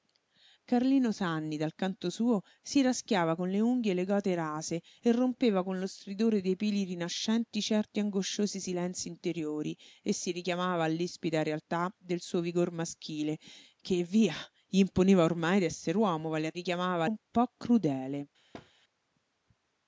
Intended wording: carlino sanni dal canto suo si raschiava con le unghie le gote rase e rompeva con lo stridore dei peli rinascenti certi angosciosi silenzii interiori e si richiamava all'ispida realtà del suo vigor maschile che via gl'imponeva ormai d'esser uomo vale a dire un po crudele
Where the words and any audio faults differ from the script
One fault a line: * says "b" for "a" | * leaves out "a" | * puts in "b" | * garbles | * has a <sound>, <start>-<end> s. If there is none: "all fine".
* says "richiamava" for "dire"
* has a thud, 18.5-18.7 s